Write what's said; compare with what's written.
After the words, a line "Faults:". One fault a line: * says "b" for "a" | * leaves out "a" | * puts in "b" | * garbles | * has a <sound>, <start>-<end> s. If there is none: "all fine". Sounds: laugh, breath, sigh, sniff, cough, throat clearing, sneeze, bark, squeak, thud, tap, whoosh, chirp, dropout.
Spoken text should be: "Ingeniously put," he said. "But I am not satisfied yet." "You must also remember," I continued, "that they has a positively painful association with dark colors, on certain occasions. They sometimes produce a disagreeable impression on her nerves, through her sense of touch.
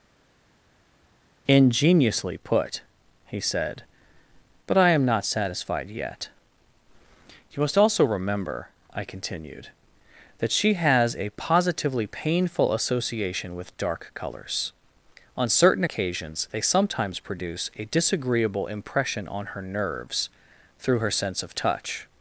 "Ingeniously put," he said. "But I am not satisfied yet." "You must also remember," I continued, "that she has a positively painful association with dark colors, on certain occasions. They sometimes produce a disagreeable impression on her nerves, through her sense of touch.
Faults:
* says "she" for "they"